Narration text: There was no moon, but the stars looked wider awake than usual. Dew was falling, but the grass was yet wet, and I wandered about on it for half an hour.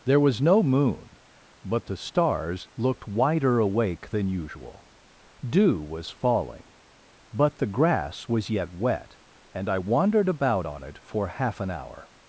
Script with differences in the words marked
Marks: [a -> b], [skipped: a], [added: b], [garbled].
There was no moon, but the stars looked wider awake than usual. Dew was falling, but the grass was yet wet, and I wandered about on it for half an hour.